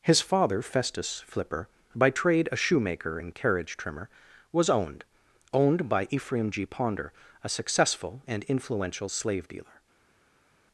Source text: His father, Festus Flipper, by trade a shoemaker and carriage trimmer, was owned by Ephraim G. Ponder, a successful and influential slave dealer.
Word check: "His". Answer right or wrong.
right